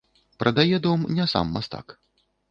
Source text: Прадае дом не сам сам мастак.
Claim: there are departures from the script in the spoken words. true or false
true